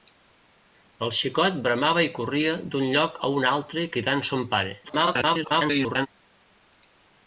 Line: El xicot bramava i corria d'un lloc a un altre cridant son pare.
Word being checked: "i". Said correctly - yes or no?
yes